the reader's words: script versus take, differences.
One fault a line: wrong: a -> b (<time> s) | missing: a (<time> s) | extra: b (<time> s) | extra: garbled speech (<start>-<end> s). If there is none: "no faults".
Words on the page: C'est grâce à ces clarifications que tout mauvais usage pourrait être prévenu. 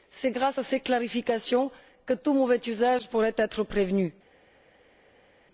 no faults